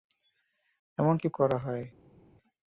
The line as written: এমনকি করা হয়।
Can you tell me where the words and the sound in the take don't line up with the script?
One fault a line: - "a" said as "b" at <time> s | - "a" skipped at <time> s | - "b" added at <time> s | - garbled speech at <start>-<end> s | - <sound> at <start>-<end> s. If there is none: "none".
none